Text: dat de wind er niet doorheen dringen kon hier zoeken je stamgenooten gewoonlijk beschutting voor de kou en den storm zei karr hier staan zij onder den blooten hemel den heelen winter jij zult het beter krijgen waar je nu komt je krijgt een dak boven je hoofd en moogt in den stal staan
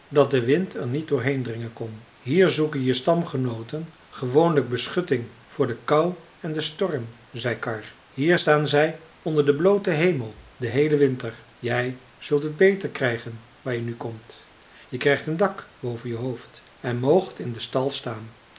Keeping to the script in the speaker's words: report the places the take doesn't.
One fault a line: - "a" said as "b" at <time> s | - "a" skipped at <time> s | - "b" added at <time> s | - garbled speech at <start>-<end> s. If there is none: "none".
none